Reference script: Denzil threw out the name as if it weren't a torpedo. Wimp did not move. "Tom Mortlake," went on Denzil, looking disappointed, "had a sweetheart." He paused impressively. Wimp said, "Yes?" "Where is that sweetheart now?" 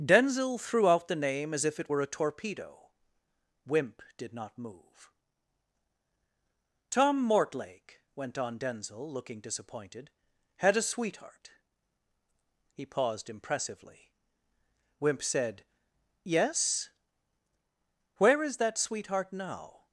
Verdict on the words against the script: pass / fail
fail